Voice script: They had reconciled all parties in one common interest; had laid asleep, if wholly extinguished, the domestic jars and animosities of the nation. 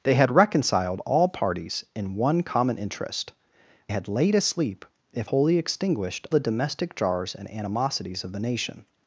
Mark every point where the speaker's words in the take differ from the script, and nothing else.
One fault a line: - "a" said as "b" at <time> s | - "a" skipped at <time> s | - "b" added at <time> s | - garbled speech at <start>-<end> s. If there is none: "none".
none